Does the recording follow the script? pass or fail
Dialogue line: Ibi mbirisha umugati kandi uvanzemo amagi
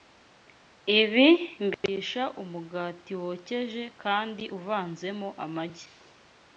fail